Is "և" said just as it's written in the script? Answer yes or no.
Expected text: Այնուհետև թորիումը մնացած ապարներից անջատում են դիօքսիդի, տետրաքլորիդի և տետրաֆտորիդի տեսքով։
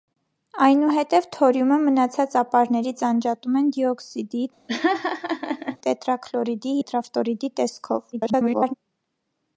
no